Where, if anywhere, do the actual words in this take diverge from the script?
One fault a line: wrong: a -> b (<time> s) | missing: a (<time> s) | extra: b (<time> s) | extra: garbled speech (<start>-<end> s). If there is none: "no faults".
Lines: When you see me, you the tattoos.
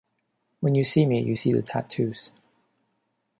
extra: see (1.3 s)